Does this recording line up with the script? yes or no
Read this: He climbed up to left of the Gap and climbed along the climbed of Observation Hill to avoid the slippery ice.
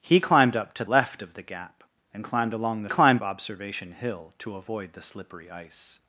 yes